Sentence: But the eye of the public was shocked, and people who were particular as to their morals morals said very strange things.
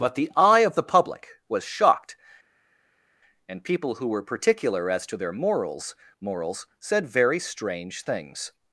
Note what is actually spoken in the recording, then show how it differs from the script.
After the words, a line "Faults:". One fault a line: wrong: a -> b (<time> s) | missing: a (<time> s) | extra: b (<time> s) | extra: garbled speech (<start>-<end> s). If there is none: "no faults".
But the eye of the public was shocked, and people who were particular as to their morals morals said very strange things.
Faults:
no faults